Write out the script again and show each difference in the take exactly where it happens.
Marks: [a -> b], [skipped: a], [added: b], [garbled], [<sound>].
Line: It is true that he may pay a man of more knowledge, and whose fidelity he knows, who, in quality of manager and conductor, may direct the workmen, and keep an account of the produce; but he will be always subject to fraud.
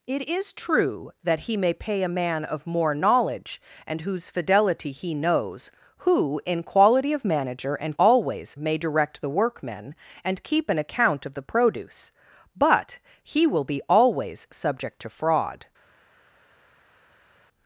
It is true that he may pay a man of more knowledge, and whose fidelity he knows, who, in quality of manager and [conductor, -> always] may direct the workmen, and keep an account of the produce; but he will be always subject to fraud.